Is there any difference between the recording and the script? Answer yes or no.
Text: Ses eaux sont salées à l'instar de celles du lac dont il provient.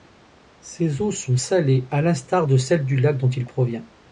no